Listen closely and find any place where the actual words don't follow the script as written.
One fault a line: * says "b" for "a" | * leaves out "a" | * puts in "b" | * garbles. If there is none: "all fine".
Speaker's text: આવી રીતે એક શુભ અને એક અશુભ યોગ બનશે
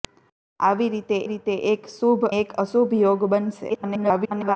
* puts in "રીતે"
* leaves out "અને"
* garbles